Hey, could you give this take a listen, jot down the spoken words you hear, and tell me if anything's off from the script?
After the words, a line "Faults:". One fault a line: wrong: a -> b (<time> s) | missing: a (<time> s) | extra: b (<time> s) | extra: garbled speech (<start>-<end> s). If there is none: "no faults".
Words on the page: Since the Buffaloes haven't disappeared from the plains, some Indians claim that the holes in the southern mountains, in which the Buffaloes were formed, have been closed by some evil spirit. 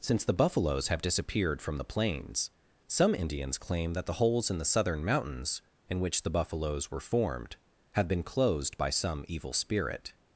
Since the Buffaloes have disappeared from the plains, some Indians claim that the holes in the southern mountains, in which the Buffaloes were formed, have been closed by some evil spirit.
Faults:
wrong: haven't -> have (0.9 s)